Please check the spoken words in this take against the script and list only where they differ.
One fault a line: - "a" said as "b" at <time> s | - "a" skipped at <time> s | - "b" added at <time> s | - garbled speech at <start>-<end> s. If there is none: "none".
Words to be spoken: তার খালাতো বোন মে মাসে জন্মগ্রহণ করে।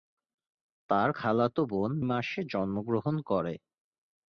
- "মে" skipped at 1.9 s